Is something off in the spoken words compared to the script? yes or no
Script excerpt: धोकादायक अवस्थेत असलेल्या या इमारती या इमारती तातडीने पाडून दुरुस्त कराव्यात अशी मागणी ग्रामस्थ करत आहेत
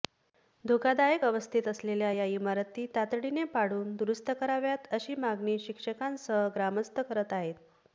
yes